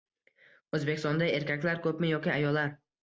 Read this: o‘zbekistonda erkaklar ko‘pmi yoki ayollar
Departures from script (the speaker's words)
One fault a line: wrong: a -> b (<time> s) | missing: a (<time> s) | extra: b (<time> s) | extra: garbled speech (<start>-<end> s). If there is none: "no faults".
no faults